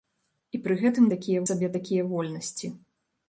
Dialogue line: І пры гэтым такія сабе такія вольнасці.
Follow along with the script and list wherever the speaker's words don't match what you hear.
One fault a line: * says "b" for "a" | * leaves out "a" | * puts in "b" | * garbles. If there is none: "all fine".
all fine